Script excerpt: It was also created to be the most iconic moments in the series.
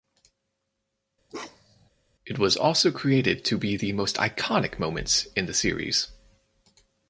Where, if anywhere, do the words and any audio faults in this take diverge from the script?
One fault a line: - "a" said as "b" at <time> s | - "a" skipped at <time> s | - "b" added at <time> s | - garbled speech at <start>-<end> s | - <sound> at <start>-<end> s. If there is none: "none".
- bark at 1.3-1.9 s